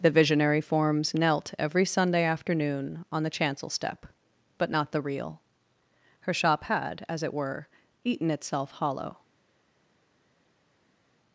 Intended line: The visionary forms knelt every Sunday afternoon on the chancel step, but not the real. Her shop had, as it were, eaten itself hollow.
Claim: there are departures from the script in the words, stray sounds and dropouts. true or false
false